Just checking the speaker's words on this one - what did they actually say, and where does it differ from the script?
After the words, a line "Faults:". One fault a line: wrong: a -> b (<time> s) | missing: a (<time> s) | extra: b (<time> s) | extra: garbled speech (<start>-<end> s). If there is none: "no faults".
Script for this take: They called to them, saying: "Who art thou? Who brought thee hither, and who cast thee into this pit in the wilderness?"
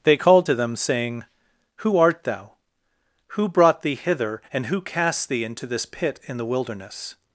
They called to them, saying: "Who art thou? Who brought thee hither, and who cast thee into this pit in the wilderness?"
Faults:
no faults